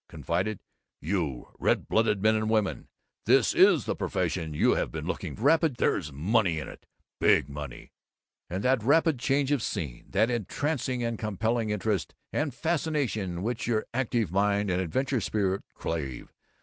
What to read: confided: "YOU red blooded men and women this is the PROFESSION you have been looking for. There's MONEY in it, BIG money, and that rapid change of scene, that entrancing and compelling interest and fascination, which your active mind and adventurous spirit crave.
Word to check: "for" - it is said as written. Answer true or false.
false